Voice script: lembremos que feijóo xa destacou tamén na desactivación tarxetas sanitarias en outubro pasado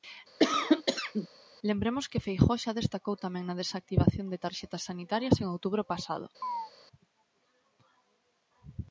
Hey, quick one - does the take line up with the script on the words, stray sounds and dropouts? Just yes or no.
no